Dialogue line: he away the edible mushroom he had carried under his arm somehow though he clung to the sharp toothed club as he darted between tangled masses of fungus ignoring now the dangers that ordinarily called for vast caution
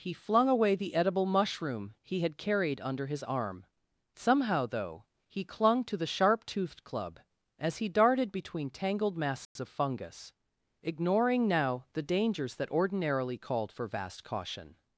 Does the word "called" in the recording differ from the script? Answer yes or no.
no